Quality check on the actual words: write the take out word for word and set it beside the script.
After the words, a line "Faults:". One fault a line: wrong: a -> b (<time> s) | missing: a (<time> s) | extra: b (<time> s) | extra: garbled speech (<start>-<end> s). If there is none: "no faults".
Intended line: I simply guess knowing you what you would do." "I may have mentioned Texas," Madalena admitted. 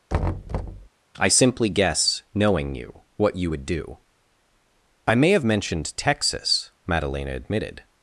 I simply guess knowing you what you would do." "I may have mentioned Texas," Madalena admitted.
Faults:
no faults